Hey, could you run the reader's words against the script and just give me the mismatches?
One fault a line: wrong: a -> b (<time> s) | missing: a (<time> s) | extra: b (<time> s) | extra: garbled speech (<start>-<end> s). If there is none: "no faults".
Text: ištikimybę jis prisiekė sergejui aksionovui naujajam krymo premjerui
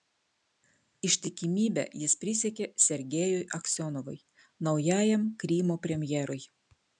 no faults